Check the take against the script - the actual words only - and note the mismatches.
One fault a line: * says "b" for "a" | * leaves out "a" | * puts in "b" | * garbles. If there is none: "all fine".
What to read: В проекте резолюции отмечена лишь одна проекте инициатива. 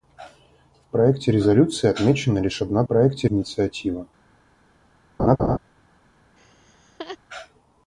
all fine